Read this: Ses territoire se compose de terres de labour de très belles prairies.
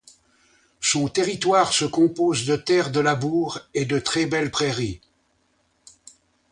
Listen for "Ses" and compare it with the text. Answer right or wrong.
wrong